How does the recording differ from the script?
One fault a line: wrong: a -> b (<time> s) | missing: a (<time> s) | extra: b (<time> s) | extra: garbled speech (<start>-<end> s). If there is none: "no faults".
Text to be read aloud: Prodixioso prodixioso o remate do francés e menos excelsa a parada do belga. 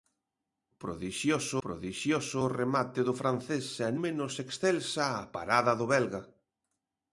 no faults